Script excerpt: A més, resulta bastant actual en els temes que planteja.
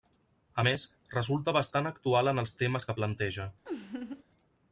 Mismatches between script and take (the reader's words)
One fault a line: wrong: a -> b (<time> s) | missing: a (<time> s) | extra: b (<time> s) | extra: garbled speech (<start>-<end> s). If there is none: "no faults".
no faults